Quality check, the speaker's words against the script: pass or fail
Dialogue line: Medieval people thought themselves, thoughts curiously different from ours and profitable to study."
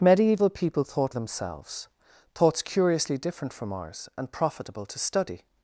pass